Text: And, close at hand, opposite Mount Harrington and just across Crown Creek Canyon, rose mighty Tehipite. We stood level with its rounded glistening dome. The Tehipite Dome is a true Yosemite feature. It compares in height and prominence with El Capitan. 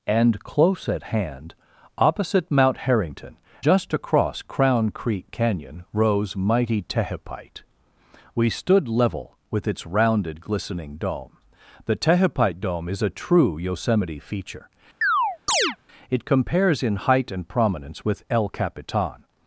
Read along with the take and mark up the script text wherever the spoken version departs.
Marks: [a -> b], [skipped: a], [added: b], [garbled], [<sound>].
And, close at hand, opposite Mount Harrington [skipped: and] just across Crown Creek Canyon, rose mighty Tehipite. We stood level with its rounded glistening dome. The Tehipite Dome is a true Yosemite feature. [chirp] It compares in height and prominence with El Capitan.